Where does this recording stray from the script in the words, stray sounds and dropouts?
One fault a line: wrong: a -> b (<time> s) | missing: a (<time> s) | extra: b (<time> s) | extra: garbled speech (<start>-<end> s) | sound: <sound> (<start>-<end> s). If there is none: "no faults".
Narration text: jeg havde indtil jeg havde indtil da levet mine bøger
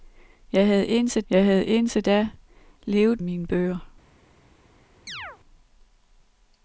sound: chirp (5.1-5.4 s)